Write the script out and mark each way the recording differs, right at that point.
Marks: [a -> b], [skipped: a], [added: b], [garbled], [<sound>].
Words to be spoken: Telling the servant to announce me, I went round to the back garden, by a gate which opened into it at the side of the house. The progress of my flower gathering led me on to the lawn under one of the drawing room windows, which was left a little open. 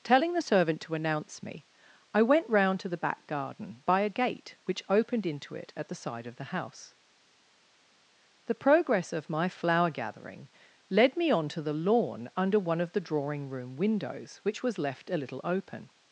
Telling the servant to announce me, I went round to the back garden, by a gate which opened into it at the side of the house. The progress of my flower gathering led me on to the lawn under one of the drawing room windows, which was left a little open.